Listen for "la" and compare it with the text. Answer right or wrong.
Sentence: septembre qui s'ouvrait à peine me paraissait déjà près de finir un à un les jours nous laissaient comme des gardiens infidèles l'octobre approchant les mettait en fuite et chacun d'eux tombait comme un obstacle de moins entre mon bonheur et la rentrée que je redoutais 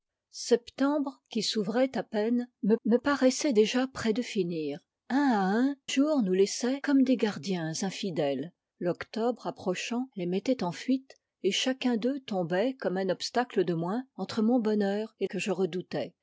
wrong